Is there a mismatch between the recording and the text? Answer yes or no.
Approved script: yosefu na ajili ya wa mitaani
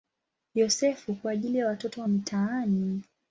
yes